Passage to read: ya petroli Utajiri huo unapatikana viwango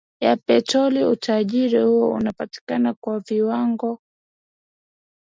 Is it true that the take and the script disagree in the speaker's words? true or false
true